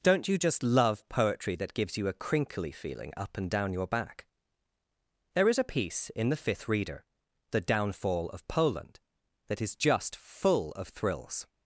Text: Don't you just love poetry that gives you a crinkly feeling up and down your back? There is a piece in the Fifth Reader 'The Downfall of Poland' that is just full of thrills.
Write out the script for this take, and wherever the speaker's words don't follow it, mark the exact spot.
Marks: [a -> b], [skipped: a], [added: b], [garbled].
Don't you just love poetry that gives you a crinkly feeling up and down your back? There is a piece in the Fifth Reader 'The Downfall of Poland' that is just full of thrills.